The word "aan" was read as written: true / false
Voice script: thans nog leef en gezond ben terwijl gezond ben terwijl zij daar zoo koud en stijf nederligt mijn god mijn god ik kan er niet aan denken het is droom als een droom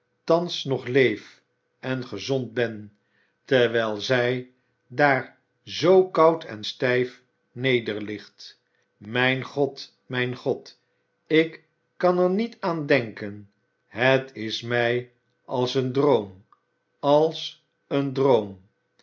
true